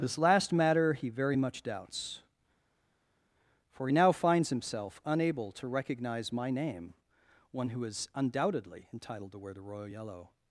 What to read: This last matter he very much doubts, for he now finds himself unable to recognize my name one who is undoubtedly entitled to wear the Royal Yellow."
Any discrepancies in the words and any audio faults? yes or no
no